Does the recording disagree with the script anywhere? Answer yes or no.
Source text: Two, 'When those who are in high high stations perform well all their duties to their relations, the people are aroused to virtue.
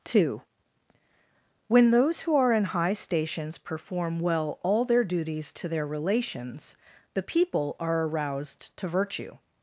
yes